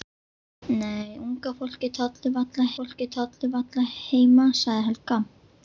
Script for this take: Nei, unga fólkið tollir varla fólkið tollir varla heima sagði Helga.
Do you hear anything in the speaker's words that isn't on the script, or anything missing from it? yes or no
no